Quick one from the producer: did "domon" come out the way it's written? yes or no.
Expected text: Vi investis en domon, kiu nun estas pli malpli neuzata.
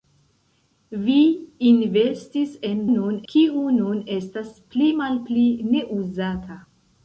no